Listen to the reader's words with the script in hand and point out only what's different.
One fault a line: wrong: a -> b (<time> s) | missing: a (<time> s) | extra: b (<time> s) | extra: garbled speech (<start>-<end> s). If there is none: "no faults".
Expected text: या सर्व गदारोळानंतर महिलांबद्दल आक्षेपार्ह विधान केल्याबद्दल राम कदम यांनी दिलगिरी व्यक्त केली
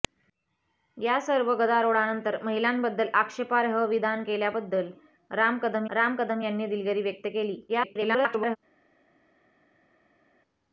extra: राम कदम (5.9 s)
extra: garbled speech (7.7-8.6 s)